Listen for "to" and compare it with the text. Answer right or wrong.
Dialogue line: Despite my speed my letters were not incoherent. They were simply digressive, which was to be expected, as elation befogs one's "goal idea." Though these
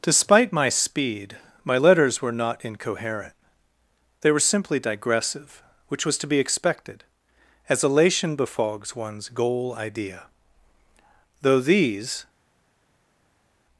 right